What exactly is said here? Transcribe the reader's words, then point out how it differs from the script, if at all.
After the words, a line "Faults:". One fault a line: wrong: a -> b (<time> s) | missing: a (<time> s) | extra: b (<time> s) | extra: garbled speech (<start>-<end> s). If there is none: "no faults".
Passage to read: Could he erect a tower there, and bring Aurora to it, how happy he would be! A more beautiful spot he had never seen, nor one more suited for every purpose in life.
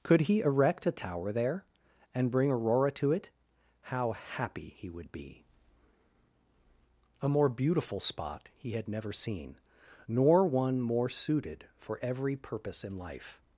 Could he erect a tower there, and bring Aurora to it, how happy he would be! A more beautiful spot he had never seen, nor one more suited for every purpose in life.
Faults:
no faults